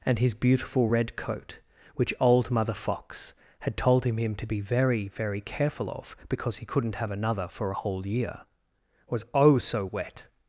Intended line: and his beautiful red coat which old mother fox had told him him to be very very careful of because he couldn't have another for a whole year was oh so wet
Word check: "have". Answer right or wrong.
right